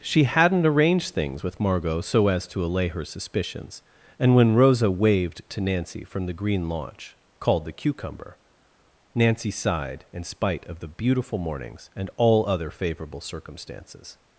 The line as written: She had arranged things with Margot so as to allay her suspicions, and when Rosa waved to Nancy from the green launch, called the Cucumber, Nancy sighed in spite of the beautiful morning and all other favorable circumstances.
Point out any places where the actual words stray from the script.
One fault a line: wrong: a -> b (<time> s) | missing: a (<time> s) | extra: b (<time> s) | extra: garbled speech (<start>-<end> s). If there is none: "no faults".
wrong: had -> hadn't (0.2 s)
wrong: morning -> mornings (11.4 s)